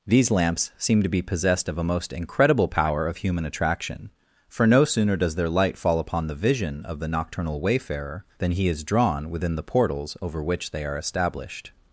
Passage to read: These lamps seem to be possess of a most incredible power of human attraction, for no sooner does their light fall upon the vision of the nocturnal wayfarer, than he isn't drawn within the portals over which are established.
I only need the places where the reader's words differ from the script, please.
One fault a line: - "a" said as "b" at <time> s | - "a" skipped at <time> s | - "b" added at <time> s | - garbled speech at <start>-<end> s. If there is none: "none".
- "possess" said as "possessed" at 1.2 s
- "isn't" said as "is" at 8.7 s
- "they" added at 10.7 s